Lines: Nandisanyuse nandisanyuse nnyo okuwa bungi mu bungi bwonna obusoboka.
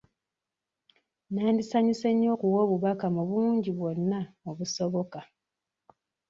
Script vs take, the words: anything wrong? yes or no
yes